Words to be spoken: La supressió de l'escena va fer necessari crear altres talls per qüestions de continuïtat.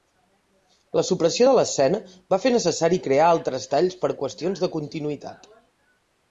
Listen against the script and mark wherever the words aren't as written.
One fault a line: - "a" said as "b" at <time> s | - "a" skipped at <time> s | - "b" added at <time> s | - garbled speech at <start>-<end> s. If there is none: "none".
none